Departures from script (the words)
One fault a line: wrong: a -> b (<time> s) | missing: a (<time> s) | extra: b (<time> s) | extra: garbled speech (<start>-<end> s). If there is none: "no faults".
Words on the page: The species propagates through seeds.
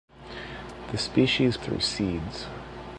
missing: propagates (1.6 s)